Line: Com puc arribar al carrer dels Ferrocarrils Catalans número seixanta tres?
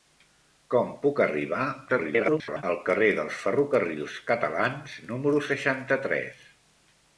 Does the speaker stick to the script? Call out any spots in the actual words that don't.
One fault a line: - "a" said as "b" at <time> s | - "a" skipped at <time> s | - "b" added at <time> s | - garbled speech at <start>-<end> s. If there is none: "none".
- garbled speech at 1.9-2.6 s